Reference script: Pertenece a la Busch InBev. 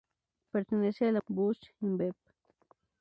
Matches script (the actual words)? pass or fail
pass